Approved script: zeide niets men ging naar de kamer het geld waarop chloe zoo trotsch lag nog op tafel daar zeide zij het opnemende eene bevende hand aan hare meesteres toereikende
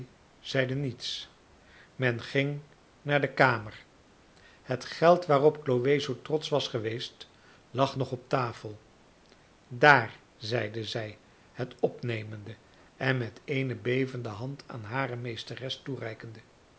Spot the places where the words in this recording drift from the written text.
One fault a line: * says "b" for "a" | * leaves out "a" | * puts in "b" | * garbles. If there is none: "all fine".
* puts in "was geweest"
* puts in "en met"